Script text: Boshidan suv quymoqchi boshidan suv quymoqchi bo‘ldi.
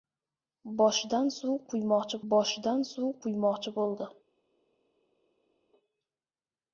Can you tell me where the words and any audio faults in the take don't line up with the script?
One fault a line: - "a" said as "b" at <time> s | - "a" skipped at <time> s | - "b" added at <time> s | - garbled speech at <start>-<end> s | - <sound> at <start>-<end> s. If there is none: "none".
none